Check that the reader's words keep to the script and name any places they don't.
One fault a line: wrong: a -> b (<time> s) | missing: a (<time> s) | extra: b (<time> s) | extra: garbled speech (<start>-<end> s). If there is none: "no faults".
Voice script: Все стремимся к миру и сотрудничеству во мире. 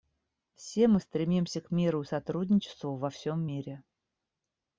extra: мы (0.9 s)
extra: всем (3.1 s)